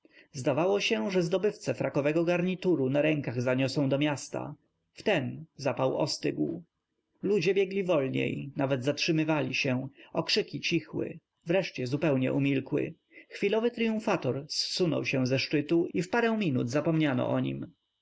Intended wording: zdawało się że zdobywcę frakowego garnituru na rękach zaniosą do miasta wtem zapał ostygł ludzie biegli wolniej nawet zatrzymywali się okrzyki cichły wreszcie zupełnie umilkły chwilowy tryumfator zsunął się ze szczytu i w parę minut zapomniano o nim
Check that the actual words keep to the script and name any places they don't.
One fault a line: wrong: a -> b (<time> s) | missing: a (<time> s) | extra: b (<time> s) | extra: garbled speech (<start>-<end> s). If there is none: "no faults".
no faults